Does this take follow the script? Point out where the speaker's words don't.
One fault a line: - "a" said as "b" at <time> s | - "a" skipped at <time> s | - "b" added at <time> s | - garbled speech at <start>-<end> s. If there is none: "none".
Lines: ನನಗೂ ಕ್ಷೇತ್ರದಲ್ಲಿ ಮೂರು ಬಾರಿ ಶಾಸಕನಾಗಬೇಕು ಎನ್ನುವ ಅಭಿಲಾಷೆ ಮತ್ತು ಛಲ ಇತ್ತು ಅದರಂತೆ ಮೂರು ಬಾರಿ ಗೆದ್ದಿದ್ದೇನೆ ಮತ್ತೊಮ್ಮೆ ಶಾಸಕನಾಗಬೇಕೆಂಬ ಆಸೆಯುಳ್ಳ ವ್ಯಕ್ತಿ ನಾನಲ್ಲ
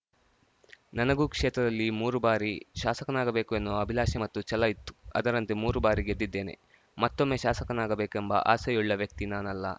none